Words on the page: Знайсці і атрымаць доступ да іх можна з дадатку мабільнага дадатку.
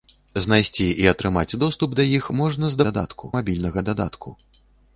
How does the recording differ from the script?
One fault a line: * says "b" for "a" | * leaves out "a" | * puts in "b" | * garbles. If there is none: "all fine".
all fine